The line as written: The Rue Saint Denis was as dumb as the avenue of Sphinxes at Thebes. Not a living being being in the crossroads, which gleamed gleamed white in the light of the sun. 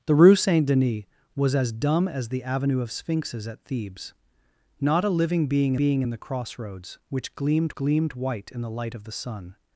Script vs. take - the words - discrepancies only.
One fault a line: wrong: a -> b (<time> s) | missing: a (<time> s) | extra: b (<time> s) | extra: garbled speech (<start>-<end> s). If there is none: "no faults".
no faults